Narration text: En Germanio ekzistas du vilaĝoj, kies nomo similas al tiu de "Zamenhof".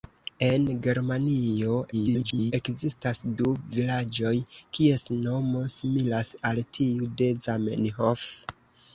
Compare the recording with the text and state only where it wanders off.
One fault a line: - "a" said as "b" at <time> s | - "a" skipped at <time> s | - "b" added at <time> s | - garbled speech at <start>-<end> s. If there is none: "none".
- garbled speech at 1.9-2.5 s